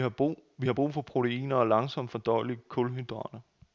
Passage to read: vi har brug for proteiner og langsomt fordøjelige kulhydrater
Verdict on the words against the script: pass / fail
pass